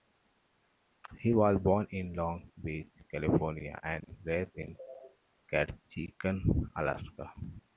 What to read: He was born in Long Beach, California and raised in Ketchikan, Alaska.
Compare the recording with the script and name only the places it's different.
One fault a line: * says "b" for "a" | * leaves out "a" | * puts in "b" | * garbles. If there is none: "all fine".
all fine